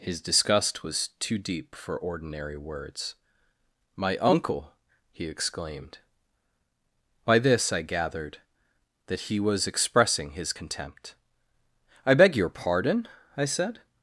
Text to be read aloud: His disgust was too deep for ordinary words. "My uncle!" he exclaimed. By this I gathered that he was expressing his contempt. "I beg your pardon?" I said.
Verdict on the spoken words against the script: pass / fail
pass